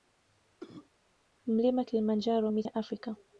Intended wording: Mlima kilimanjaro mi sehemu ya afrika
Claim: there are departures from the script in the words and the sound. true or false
true